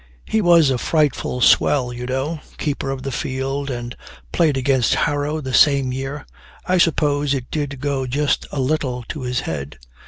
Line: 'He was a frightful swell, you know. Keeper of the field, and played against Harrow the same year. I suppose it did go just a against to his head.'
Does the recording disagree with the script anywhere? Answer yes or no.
yes